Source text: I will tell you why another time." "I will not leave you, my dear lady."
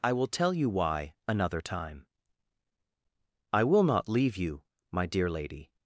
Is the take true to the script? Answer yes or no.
yes